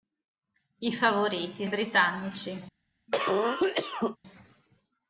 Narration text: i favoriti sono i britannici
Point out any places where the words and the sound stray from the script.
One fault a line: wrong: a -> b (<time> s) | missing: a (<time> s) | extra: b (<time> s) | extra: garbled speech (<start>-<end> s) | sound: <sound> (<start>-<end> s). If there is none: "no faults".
missing: sono (1.7 s)
sound: cough (3.1-4.2 s)